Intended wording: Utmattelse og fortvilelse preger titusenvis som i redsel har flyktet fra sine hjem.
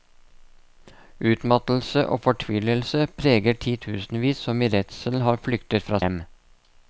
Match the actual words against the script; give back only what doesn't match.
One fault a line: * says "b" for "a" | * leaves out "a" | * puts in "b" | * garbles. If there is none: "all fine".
* leaves out "sine"